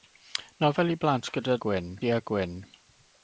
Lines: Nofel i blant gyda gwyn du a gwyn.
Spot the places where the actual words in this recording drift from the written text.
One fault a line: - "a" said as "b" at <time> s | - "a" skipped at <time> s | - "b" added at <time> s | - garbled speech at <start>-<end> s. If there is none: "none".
none